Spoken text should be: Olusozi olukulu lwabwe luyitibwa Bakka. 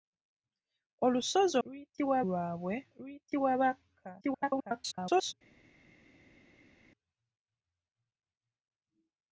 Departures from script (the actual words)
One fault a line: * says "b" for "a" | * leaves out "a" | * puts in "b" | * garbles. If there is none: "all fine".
* says "luyitibwa" for "olukulu"
* garbles